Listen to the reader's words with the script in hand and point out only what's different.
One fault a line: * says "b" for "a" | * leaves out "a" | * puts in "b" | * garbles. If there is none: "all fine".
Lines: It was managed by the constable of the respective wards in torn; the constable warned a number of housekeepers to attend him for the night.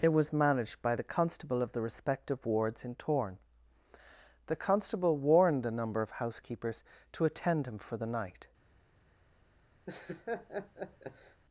all fine